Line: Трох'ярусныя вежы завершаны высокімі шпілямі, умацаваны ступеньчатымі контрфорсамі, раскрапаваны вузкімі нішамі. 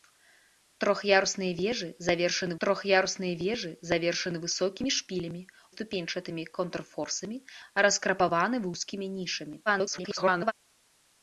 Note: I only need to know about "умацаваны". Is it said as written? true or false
false